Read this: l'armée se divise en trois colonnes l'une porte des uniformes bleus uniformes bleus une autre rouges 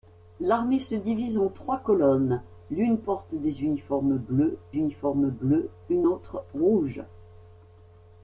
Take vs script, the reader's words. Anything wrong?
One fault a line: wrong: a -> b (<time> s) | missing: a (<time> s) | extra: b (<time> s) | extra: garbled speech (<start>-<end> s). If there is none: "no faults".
no faults